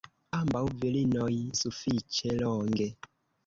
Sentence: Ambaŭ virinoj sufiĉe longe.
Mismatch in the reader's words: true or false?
false